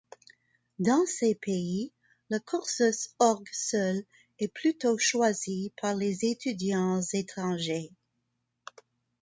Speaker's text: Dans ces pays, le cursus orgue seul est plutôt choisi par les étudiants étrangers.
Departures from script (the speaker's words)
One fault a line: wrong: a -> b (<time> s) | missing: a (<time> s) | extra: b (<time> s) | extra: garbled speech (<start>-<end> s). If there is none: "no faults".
no faults